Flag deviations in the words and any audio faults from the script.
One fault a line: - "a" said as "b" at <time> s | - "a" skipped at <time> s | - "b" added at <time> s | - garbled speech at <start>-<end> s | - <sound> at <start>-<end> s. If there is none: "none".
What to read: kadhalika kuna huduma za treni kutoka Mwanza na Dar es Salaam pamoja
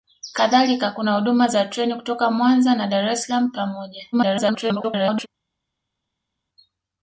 - garbled speech at 4.1-5.3 s